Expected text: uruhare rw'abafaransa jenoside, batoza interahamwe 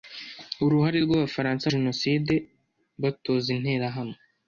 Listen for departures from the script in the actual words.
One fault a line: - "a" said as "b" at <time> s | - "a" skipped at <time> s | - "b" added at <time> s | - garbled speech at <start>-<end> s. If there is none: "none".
none